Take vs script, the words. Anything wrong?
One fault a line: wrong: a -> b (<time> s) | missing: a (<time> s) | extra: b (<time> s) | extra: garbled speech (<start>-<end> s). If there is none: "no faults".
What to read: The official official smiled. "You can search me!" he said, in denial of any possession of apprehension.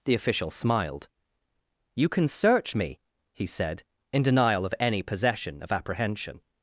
missing: official (0.5 s)